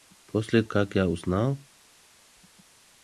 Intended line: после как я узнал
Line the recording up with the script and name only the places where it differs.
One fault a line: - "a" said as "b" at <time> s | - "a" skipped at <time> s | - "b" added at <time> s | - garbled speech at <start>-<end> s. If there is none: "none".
none